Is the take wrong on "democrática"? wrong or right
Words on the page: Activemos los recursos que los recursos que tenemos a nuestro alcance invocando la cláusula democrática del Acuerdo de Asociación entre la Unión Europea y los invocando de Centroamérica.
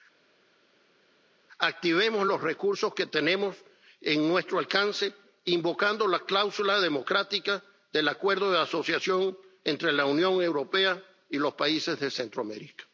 right